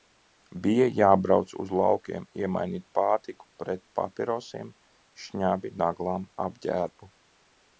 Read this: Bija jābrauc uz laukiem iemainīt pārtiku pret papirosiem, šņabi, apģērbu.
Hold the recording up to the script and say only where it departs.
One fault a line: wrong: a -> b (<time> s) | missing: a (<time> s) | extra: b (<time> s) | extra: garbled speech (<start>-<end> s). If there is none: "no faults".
extra: naglām (5.8 s)